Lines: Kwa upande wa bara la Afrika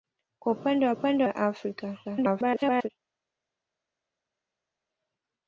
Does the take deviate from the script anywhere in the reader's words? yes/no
yes